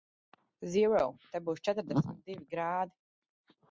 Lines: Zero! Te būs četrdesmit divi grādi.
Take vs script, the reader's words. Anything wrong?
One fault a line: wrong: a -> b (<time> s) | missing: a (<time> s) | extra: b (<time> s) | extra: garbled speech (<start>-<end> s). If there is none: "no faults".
no faults